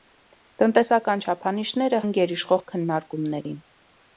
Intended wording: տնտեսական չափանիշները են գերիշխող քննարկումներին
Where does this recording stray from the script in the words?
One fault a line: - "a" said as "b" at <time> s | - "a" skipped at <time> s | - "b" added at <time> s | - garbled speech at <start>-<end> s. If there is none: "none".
none